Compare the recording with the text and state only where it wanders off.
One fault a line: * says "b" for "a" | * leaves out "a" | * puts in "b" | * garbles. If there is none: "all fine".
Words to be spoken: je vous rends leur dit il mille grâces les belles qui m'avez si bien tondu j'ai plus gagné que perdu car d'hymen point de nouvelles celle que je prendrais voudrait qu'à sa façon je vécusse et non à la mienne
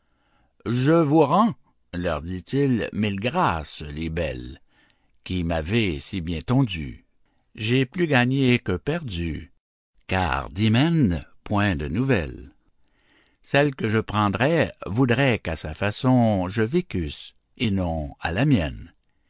all fine